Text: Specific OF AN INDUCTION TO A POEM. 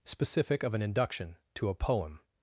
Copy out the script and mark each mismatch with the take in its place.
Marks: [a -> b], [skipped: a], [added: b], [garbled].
Specific OF AN INDUCTION TO A POEM.